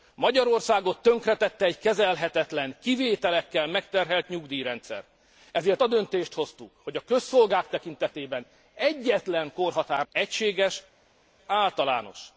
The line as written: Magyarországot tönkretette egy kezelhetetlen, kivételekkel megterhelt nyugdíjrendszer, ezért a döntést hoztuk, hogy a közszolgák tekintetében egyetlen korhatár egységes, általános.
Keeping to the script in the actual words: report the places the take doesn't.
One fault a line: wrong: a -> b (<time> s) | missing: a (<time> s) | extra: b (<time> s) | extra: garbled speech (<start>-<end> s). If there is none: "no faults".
no faults